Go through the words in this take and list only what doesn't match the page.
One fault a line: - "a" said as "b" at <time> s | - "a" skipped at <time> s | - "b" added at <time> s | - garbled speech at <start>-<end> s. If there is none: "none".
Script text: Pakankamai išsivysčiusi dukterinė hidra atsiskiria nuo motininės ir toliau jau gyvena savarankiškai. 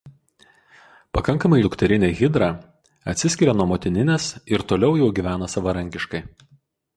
- "išsivysčiusi" skipped at 1.6 s